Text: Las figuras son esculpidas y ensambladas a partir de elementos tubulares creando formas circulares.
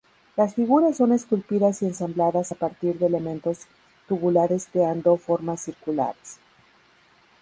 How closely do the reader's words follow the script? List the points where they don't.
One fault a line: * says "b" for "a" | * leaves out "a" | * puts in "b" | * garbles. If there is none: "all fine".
all fine